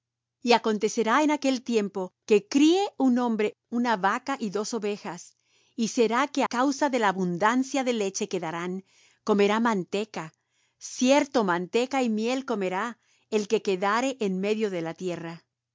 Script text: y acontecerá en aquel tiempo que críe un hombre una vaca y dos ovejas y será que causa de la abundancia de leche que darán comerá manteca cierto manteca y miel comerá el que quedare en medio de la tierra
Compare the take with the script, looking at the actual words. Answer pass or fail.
pass